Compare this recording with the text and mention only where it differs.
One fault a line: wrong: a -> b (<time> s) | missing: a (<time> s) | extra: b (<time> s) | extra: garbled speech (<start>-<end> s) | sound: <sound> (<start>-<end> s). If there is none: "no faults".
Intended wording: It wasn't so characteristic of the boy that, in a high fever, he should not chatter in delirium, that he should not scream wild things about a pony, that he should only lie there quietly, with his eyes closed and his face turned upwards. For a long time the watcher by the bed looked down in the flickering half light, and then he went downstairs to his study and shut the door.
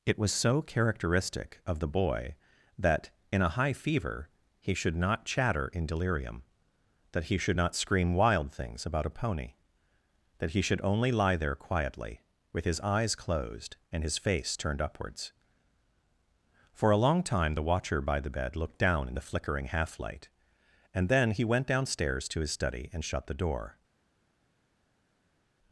wrong: wasn't -> was (0.2 s)